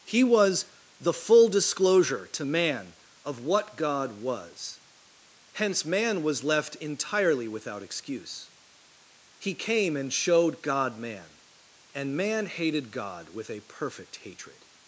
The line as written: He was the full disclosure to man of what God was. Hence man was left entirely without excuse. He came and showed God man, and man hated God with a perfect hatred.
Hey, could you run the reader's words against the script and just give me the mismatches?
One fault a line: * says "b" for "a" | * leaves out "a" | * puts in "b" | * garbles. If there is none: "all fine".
all fine